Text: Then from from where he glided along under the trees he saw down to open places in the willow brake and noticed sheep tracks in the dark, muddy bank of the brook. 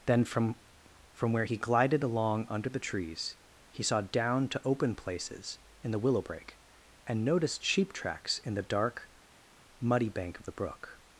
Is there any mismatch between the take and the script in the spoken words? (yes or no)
no